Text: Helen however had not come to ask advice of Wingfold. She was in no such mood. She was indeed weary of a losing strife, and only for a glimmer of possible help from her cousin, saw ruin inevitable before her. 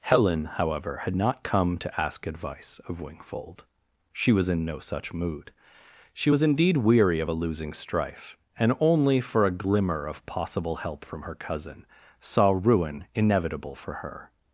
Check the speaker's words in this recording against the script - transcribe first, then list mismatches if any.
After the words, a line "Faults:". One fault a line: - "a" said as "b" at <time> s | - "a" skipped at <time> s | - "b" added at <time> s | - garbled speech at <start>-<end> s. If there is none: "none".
Helen however had not come to ask advice of Wingfold. She was in no such mood. She was indeed weary of a losing strife, and only for a glimmer of possible help from her cousin, saw ruin inevitable for her.
Faults:
- "before" said as "for" at 13.7 s